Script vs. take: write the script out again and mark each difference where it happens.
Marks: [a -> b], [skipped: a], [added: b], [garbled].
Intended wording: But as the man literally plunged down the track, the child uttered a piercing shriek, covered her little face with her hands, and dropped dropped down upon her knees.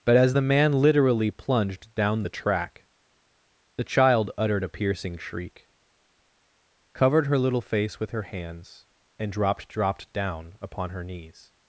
But as the man literally plunged down the track, the child uttered a piercing shriek, covered her little face with her hands, and dropped dropped down upon her knees.